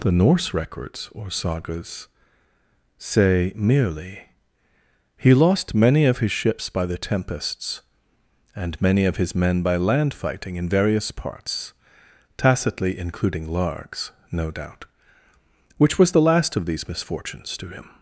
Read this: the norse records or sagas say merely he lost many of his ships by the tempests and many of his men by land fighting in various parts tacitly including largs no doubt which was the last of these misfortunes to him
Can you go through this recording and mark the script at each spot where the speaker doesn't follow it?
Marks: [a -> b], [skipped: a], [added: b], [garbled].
the norse records or sagas say merely he lost many of his ships by the tempests and many of his men by land fighting in various parts tacitly including largs no doubt which was the last of these misfortunes to him